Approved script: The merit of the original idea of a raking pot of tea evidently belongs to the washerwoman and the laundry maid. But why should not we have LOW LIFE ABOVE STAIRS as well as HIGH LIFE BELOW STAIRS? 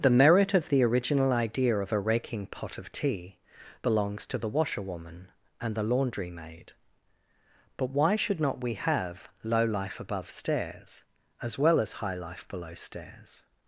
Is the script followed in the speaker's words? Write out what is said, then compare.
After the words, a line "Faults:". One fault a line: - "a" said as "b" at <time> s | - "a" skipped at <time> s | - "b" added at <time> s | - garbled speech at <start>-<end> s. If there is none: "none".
The merit of the original idea of a raking pot of tea belongs to the washerwoman and the laundry maid. But why should not we have LOW LIFE ABOVE STAIRS as well as HIGH LIFE BELOW STAIRS?
Faults:
- "evidently" skipped at 3.4 s